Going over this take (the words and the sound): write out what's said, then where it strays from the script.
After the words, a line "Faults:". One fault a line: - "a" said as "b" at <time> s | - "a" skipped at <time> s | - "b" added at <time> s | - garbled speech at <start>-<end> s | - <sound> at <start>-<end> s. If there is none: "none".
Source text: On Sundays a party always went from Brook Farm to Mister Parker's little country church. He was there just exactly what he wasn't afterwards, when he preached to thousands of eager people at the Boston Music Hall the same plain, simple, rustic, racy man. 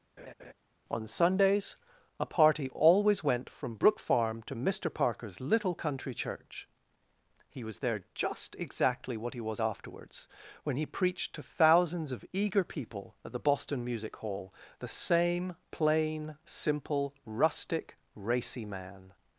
On Sundays a party always went from Brook Farm to Mister Parker's little country church. He was there just exactly what he was afterwards, when he preached to thousands of eager people at the Boston Music Hall the same plain, simple, rustic, racy man.
Faults:
- laugh at 0.2-0.5 s
- "wasn't" said as "was" at 9.4 s